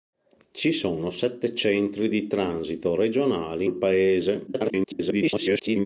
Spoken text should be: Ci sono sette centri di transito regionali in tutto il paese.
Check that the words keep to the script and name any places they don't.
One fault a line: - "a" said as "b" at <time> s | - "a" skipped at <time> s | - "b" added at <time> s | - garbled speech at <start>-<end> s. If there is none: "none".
- "in tutto" skipped at 3.7 s
- garbled speech at 4.5-5.9 s